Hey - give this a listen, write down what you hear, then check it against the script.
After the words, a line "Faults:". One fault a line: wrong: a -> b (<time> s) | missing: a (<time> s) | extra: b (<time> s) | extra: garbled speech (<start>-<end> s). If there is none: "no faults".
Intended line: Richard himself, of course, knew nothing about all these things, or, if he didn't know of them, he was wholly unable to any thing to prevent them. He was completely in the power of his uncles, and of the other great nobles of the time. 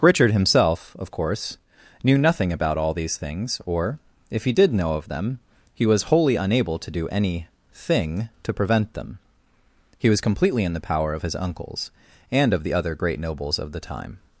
Richard himself, of course, knew nothing about all these things, or, if he did know of them, he was wholly unable to do any thing to prevent them. He was completely in the power of his uncles, and of the other great nobles of the time.
Faults:
wrong: didn't -> did (4.5 s)
extra: do (6.9 s)